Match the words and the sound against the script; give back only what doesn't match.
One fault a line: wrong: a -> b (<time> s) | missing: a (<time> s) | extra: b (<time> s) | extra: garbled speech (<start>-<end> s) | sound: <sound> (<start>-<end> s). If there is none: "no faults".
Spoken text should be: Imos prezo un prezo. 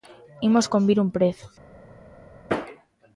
wrong: prezo -> convir (0.7 s)